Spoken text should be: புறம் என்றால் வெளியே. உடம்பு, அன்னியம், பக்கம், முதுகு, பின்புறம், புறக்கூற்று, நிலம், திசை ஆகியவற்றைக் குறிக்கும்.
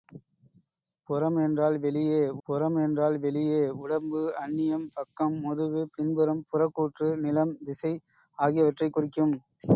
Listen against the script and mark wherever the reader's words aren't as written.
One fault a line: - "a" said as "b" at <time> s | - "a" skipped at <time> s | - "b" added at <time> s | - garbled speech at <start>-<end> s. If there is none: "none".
- "புறம் என்றால் வெளியே" added at 2.5 s